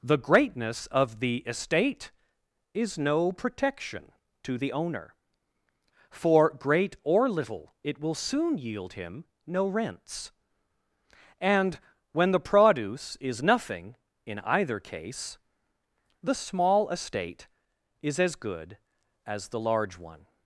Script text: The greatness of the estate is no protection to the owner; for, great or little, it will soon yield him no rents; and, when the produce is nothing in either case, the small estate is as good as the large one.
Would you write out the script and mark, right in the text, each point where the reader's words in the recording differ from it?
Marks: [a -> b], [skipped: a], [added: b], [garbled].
The greatness of the estate is no protection to the owner; for, great or little, it will soon yield him no rents; and, when the produce is nothing in either case, the small estate is as good as the large one.